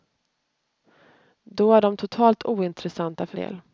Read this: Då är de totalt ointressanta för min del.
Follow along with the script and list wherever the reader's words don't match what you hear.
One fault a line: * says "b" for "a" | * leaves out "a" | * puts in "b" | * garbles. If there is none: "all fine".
* leaves out "min"